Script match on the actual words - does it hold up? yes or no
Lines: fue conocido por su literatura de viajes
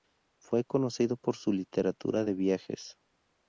yes